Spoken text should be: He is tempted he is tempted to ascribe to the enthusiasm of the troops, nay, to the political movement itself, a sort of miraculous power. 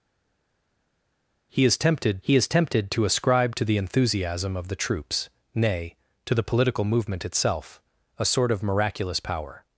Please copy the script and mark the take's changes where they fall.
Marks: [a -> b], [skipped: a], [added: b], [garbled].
He is tempted he is tempted to ascribe to the enthusiasm of the troops, nay, to the political movement itself, a sort of miraculous power.